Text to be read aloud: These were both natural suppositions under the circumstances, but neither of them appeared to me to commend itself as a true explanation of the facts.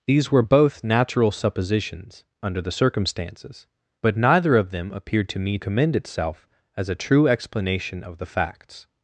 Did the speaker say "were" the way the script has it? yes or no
yes